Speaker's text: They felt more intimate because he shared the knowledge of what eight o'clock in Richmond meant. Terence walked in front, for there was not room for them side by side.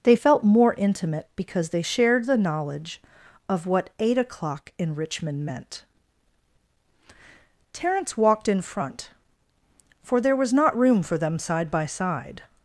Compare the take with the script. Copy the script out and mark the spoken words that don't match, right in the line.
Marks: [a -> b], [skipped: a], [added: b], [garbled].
They felt more intimate because [he -> they] shared the knowledge of what eight o'clock in Richmond meant. Terence walked in front, for there was not room for them side by side.